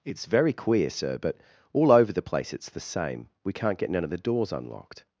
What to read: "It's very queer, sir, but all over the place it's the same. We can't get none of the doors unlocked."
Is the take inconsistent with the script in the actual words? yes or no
no